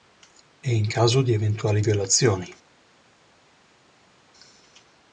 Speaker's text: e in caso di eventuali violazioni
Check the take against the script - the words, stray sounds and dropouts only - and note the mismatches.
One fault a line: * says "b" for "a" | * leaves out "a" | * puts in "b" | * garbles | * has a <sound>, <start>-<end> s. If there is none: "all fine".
all fine